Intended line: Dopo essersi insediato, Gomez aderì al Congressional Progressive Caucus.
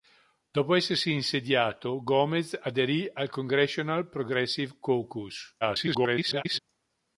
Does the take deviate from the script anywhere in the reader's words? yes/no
yes